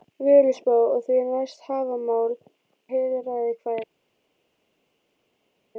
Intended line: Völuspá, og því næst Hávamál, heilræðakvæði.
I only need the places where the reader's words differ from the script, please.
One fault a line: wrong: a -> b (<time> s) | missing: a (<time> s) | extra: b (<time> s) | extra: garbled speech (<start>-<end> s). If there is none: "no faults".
no faults